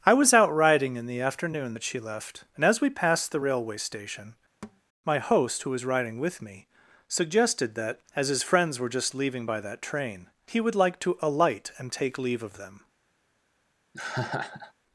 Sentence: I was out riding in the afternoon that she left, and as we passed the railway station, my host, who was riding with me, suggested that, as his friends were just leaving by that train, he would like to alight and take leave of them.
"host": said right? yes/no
yes